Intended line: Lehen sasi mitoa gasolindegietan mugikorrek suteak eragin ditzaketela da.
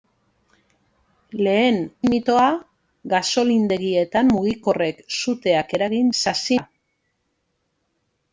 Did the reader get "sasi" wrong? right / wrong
wrong